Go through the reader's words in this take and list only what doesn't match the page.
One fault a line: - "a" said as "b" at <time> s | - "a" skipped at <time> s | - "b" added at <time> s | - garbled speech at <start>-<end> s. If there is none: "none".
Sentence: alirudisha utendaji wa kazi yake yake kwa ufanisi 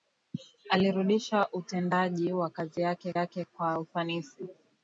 none